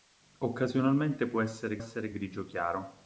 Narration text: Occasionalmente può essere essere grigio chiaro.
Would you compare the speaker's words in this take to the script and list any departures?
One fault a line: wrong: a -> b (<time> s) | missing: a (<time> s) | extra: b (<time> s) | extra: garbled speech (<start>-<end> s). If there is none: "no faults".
no faults